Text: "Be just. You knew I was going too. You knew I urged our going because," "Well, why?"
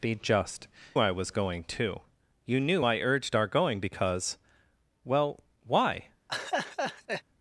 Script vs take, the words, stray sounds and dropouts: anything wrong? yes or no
yes